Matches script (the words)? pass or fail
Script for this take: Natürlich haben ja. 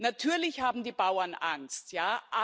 fail